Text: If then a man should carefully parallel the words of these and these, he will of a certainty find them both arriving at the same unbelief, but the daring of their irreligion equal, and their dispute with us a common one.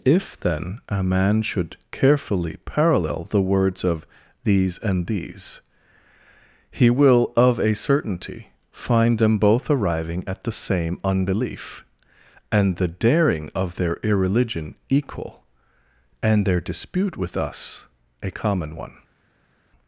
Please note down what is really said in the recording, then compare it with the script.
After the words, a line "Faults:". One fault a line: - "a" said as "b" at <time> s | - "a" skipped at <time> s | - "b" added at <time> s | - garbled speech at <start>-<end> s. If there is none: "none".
If then a man should carefully parallel the words of these and these, he will of a certainty find them both arriving at the same unbelief, and the daring of their irreligion equal, and their dispute with us a common one.
Faults:
- "but" said as "and" at 12.5 s